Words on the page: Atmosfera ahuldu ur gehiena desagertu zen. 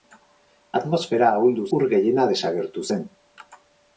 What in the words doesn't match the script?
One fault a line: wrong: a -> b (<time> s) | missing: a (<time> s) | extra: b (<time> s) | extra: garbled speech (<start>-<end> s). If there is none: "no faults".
no faults